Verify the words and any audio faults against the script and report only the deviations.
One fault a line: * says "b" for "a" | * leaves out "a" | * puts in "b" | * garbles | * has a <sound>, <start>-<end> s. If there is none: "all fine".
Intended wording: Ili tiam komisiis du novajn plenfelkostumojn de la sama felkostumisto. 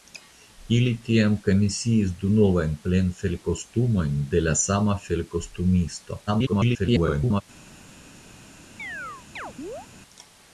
* garbles
* has a chirp, 8.8-9.9 s